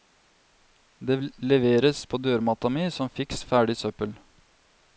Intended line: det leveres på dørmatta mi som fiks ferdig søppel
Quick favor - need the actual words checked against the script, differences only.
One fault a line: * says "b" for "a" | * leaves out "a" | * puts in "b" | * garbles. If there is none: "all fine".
all fine